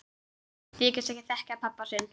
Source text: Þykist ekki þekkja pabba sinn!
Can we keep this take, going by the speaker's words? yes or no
yes